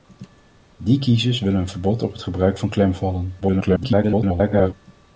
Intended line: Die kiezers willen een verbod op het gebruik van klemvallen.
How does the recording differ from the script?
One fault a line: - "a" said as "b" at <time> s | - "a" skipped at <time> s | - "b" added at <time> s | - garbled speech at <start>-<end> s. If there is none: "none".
- garbled speech at 3.4-4.7 s